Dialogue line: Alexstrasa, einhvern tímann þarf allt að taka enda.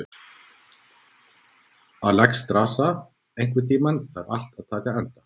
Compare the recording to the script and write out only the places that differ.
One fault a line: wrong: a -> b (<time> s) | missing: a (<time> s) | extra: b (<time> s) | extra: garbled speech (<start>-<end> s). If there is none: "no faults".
no faults